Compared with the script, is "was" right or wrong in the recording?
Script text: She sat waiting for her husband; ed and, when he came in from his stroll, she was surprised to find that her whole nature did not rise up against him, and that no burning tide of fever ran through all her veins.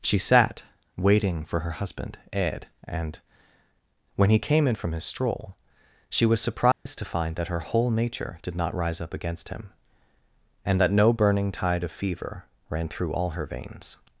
right